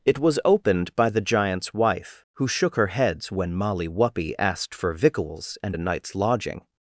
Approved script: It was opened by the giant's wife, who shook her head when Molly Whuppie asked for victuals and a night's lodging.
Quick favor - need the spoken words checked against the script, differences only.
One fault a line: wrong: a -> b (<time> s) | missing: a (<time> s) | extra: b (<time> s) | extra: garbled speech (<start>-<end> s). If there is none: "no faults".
wrong: head -> heads (2.9 s)